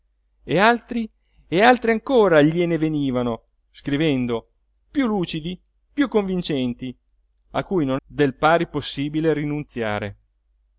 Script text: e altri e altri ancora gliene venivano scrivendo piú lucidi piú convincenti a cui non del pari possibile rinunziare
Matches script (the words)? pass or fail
pass